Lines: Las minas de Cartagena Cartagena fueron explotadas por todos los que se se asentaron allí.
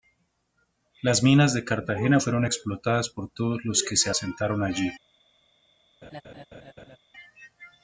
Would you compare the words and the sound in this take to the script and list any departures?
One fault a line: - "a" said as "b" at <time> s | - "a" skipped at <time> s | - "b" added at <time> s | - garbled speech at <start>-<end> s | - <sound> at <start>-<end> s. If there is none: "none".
- "Cartagena" skipped at 2.2 s
- "se" skipped at 4.1 s
- laugh at 6.0-7.0 s